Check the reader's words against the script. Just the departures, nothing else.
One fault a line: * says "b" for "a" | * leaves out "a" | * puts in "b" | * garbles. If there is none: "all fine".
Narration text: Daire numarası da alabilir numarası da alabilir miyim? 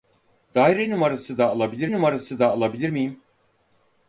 all fine